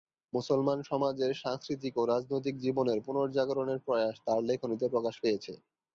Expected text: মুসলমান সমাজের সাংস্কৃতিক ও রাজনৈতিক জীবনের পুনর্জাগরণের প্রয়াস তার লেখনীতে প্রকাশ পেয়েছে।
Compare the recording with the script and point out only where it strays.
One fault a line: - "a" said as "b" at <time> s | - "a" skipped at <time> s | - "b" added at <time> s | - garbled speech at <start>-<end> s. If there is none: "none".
none